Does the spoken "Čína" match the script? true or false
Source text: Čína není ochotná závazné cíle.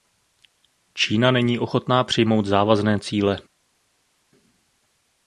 true